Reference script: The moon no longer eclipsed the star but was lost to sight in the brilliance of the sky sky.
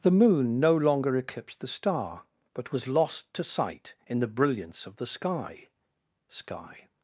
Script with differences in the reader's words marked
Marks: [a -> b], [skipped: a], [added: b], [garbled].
The moon no longer eclipsed the star but was lost to sight in the brilliance of the sky sky.